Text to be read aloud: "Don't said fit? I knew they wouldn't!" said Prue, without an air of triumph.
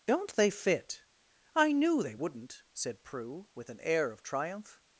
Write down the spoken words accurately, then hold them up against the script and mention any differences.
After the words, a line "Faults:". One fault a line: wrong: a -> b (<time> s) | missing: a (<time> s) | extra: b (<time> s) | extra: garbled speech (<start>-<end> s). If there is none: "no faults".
"Don't they fit? I knew they wouldn't!" said Prue, with an air of triumph.
Faults:
wrong: said -> they (0.3 s)
wrong: without -> with (3.5 s)